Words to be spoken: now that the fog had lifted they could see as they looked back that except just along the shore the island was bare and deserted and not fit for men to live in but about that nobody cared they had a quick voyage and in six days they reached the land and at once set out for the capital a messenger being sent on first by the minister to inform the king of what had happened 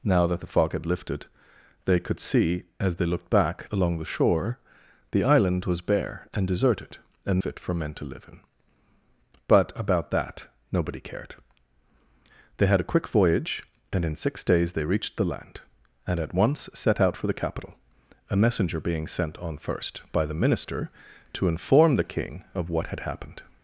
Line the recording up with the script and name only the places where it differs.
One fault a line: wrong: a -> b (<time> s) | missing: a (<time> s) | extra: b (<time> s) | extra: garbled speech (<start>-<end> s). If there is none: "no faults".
missing: that except just (3.7 s)
missing: not (7.4 s)